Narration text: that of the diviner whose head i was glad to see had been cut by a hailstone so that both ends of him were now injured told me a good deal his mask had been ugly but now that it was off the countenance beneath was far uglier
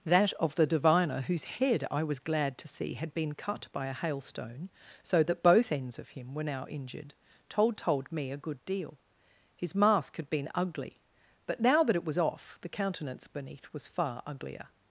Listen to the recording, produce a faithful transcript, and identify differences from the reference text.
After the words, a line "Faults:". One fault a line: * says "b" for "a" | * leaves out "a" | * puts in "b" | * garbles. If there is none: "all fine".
that of the diviner whose head i was glad to see had been cut by a hailstone so that both ends of him were now injured told told me a good deal his mask had been ugly but now that it was off the countenance beneath was far uglier
Faults:
* puts in "told"